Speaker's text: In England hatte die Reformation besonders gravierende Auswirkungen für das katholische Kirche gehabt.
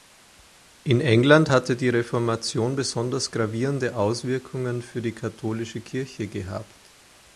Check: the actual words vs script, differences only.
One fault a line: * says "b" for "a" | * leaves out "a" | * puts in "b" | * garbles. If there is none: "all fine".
* says "die" for "das"